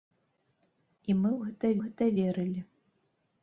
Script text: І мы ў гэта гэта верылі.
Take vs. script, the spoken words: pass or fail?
pass